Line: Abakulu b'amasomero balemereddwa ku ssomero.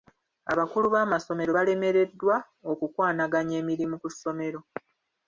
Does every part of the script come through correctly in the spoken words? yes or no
no